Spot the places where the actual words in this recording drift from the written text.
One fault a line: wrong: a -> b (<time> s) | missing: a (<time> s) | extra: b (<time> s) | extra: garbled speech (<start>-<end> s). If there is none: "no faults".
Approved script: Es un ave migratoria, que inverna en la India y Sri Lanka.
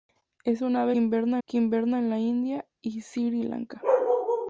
wrong: migratoria -> inverna (1.0 s)